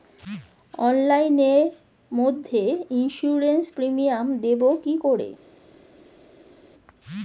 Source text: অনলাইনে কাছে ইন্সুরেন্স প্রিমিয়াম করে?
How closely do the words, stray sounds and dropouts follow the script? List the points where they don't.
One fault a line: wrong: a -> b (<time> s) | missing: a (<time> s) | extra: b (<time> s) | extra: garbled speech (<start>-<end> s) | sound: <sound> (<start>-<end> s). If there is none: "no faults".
wrong: কাছে -> মধ্যে (2.1 s)
extra: দেবো কি (4.4 s)